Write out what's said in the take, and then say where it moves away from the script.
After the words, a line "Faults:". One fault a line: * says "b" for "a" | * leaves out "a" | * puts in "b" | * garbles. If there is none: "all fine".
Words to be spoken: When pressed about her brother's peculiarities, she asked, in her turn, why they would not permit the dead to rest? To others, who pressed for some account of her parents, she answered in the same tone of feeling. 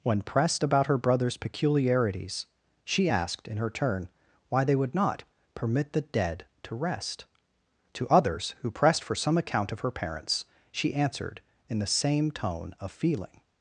When pressed about her brother's peculiarities, she asked, in her turn, why they would not permit the dead to rest? To others, who pressed for some account of her parents, she answered in the same tone of feeling.
Faults:
all fine